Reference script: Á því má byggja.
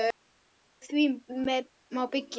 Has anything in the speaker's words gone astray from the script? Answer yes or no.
no